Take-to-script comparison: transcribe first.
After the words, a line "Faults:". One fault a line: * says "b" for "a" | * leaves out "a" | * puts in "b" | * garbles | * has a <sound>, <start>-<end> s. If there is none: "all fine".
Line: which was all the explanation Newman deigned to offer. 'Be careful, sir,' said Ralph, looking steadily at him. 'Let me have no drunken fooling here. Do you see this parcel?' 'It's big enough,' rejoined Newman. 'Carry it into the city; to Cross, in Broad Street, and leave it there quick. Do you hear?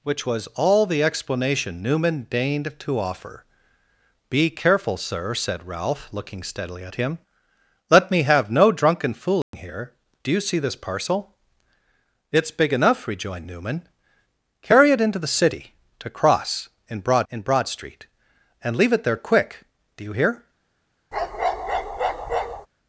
which was all the explanation Newman deigned to offer. 'Be careful, sir,' said Ralph, looking steadily at him. 'Let me have no drunken fooling here. Do you see this parcel?' 'It's big enough,' rejoined Newman. 'Carry it into the city; to Cross, in Broad in Broad Street, and leave it there quick. Do you hear?
Faults:
* has a dropout, 9.4-9.5 s
* puts in "in Broad"
* has a bark, 21.1-22.7 s